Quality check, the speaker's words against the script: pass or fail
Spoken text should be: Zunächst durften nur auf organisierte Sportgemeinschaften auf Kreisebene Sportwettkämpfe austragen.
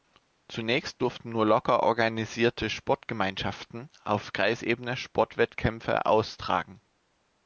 fail